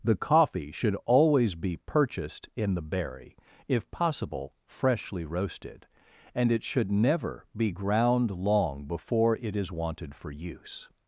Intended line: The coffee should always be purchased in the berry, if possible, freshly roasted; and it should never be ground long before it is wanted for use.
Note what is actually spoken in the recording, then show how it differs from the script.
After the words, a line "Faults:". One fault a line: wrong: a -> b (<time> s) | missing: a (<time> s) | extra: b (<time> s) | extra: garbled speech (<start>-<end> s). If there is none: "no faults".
The coffee should always be purchased in the berry, if possible, freshly roasted; and it should never be ground long before it is wanted for use.
Faults:
no faults